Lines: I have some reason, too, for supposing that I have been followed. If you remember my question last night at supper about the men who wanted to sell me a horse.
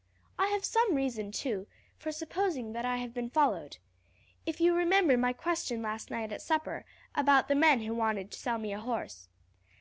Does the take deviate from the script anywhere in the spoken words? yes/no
no